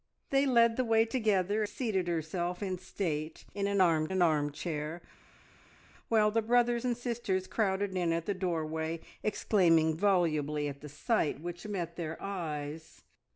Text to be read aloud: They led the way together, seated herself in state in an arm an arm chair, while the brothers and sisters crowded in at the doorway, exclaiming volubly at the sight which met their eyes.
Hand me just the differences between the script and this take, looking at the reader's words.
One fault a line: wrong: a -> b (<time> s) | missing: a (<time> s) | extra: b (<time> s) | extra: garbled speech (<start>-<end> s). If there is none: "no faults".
no faults